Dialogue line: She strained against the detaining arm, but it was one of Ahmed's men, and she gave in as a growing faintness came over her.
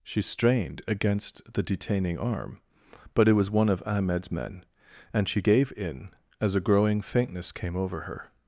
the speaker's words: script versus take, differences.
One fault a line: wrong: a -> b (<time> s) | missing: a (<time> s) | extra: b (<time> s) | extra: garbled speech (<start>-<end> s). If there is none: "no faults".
no faults